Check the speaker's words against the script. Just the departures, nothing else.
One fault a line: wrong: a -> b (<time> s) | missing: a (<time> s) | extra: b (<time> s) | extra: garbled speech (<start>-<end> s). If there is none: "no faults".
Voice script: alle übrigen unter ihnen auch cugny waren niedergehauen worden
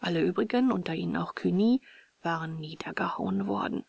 no faults